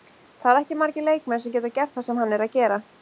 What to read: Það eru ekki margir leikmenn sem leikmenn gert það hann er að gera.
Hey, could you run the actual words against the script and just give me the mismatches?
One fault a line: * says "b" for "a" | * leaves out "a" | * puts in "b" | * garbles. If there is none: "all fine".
* says "geta" for "leikmenn"
* puts in "sem"